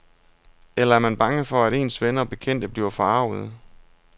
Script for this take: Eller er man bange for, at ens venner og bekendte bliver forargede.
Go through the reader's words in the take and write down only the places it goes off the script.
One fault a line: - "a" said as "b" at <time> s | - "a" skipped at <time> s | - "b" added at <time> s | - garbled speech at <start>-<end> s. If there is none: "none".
none